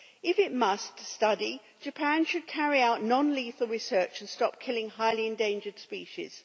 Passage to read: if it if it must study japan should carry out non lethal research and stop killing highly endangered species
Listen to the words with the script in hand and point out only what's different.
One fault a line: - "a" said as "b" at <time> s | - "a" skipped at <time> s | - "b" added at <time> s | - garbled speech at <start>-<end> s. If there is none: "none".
- "if it" skipped at 0.5 s